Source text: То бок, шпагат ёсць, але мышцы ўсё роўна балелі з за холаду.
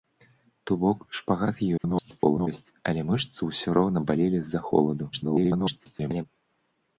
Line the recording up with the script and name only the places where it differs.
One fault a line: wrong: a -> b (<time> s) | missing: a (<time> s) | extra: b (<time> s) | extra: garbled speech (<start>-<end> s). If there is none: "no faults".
extra: garbled speech (1.8-2.5 s)
extra: garbled speech (5.1-6.3 s)